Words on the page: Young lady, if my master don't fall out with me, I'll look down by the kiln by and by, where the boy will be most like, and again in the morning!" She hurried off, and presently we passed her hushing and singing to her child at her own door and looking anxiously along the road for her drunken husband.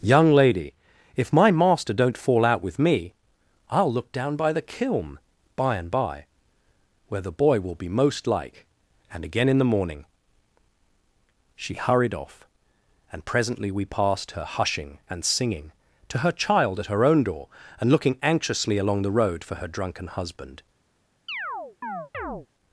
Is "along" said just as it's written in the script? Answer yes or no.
yes